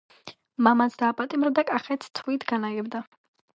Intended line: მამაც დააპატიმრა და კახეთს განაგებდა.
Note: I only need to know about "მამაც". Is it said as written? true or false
true